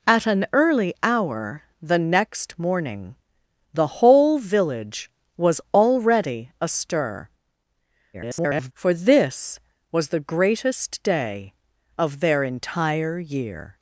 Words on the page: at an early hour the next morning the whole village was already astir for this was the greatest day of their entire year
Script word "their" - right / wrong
right